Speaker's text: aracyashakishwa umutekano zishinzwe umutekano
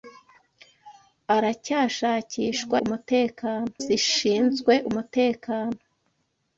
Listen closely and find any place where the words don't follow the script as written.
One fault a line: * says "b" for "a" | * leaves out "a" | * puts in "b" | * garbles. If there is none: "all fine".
all fine